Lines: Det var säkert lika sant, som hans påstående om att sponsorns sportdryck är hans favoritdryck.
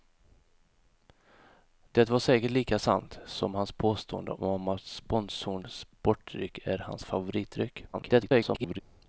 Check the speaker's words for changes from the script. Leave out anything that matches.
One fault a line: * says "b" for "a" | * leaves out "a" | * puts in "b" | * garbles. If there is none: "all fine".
* garbles